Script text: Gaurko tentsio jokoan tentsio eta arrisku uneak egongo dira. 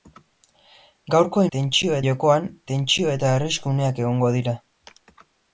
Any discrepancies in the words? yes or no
no